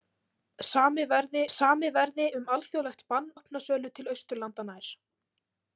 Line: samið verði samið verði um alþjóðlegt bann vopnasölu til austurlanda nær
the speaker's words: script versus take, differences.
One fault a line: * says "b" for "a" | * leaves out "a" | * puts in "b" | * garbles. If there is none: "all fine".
all fine